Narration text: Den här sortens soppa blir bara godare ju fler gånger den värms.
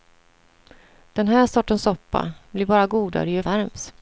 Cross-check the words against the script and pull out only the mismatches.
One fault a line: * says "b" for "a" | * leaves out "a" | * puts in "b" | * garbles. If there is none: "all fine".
* leaves out "fler gånger den"